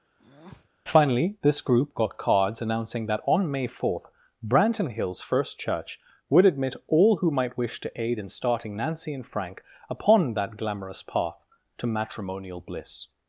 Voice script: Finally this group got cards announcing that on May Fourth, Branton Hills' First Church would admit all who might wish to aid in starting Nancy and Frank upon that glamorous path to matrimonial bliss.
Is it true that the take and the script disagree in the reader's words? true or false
false